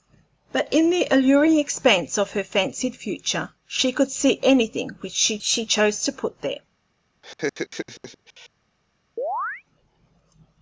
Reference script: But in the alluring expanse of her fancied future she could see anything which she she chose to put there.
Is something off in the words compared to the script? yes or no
no